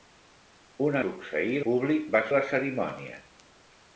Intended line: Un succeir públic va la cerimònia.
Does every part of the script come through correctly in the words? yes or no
yes